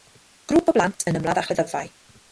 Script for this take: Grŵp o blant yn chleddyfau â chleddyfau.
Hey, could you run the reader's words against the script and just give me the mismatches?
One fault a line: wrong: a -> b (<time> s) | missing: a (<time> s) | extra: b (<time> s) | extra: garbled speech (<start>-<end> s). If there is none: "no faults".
wrong: chleddyfau -> ymladd (1.2 s)